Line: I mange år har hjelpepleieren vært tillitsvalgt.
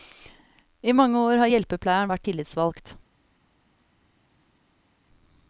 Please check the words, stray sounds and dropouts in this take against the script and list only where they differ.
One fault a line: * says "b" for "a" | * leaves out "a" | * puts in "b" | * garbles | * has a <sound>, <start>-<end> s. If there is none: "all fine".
all fine